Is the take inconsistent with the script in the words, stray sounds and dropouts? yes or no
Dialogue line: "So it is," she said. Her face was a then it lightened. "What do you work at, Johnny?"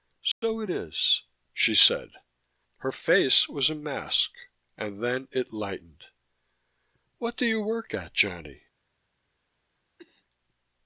yes